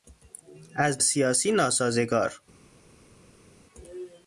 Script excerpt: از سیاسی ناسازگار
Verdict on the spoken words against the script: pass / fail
pass